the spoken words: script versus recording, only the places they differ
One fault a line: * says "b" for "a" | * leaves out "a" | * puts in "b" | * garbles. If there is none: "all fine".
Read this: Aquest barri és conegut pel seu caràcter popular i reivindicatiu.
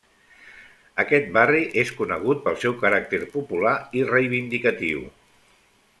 all fine